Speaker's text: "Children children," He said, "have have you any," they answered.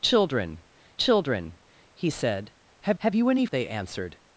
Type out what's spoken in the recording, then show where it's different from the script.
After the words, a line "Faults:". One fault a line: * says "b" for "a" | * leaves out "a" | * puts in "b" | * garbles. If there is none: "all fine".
"Children children," He said, "have have you any," they answered.
Faults:
all fine